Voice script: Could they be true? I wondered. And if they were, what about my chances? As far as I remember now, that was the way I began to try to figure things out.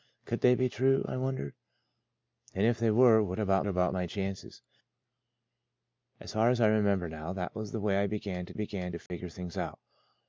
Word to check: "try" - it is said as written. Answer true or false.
false